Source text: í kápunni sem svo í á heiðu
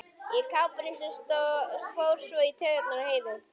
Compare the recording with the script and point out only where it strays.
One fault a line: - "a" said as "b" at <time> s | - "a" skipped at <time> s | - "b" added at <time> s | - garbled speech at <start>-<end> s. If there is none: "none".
- "fór" added at 2.0 s
- "taugarnar" added at 2.6 s